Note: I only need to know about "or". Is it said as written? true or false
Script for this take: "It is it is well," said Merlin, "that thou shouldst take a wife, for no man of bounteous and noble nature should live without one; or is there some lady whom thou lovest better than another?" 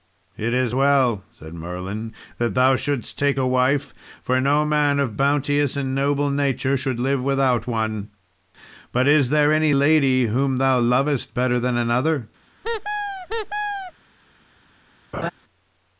false